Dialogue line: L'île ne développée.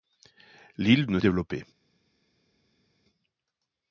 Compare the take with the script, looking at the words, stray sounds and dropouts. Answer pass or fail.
pass